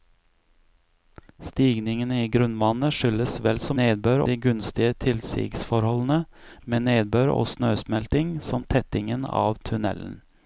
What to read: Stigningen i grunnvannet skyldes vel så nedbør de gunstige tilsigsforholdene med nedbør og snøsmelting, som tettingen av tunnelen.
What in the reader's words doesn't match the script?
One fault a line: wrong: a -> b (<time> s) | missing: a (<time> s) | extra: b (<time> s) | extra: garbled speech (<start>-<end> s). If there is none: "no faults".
no faults